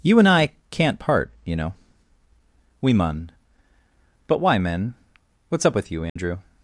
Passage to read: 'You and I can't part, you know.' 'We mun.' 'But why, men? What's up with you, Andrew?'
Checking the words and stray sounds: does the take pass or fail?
fail